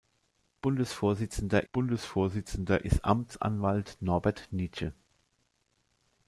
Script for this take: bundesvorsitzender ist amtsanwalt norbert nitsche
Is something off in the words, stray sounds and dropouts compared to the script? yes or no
yes